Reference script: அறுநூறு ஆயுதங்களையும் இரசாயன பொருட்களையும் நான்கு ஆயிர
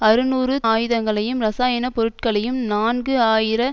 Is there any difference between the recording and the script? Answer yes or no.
no